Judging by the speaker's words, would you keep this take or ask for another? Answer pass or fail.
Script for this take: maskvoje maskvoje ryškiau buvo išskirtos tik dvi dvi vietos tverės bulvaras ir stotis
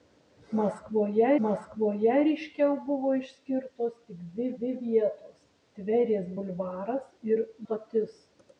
pass